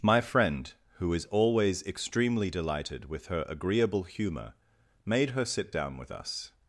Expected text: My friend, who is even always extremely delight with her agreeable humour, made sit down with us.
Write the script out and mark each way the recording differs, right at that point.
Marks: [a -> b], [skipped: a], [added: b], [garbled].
My friend, who is [skipped: even] always extremely [delight -> delighted] with her agreeable humour, made [added: her] sit down with us.